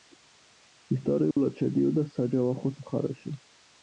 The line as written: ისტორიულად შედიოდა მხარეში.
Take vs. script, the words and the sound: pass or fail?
fail